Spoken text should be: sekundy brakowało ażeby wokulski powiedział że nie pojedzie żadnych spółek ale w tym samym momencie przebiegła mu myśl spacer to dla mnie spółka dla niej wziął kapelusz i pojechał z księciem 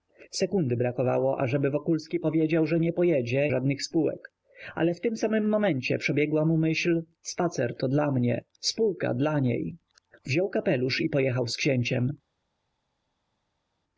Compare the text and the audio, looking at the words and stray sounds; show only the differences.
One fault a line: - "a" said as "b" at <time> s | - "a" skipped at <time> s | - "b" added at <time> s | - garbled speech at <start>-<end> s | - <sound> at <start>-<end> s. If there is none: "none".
none